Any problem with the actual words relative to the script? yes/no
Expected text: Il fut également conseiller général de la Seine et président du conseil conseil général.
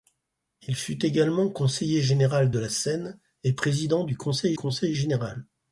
no